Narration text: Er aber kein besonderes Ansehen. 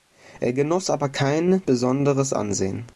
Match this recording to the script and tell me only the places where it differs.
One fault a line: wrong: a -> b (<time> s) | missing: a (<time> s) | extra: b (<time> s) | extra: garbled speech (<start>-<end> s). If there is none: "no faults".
extra: genoss (0.5 s)